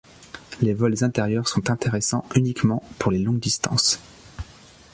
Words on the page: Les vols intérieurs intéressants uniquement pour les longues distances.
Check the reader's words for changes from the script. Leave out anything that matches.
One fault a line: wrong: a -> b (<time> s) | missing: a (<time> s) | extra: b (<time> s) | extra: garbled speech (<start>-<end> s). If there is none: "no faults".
extra: sont (1.5 s)